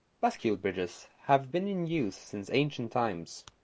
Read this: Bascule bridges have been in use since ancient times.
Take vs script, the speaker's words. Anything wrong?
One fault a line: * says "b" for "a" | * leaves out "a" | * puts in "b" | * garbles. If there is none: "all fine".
all fine